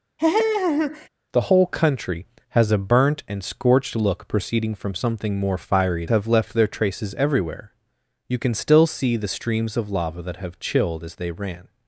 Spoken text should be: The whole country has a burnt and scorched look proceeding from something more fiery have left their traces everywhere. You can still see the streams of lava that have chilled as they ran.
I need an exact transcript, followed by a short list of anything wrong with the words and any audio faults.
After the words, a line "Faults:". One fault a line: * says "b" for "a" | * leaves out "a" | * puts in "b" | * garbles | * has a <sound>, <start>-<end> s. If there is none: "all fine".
The whole country has a burnt and scorched look proceeding from something more fiery have left their traces everywhere. You can still see the streams of lava that have chilled as they ran.
Faults:
* has a laugh, 0.2-1.1 s